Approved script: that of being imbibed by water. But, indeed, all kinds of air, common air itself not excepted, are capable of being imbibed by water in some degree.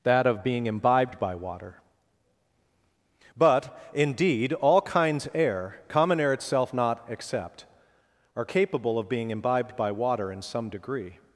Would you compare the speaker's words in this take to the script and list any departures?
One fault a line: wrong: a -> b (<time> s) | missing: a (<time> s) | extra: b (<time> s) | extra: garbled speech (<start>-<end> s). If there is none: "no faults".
missing: of (5.3 s)
wrong: excepted -> except (7.1 s)